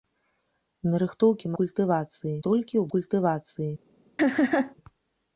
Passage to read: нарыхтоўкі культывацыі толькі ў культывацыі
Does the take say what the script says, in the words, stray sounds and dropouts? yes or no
no